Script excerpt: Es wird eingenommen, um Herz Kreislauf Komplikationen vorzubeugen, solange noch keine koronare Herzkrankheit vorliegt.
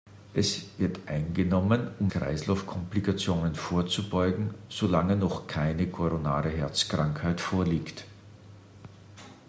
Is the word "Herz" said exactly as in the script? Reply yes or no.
no